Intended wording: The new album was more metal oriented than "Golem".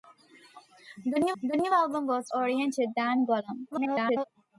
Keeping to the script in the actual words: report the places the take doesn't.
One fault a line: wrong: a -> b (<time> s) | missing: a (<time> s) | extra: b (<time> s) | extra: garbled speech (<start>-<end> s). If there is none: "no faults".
extra: the new (1.4 s)
missing: more metal (2.3 s)
extra: garbled speech (3.7-4.3 s)